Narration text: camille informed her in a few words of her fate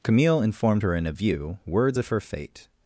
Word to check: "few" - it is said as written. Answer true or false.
false